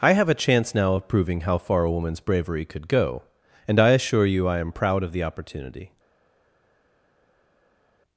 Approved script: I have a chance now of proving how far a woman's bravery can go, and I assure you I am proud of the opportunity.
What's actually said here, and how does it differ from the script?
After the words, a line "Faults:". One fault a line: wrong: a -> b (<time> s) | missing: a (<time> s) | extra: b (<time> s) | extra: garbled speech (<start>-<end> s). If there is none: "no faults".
I have a chance now of proving how far a woman's bravery could go, and I assure you I am proud of the opportunity.
Faults:
wrong: can -> could (2.6 s)